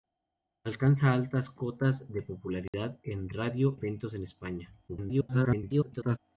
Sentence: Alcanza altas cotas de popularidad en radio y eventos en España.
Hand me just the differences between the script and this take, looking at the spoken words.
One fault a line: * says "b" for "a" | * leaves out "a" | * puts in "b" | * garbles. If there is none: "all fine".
* leaves out "y"
* garbles